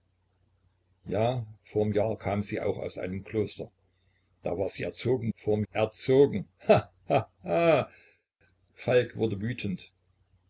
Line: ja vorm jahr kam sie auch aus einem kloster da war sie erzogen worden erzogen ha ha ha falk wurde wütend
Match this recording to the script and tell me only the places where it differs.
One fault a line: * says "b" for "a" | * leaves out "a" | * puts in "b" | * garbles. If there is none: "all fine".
* says "vorm" for "worden"